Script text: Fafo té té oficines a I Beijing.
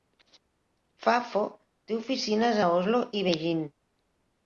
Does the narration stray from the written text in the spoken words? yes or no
yes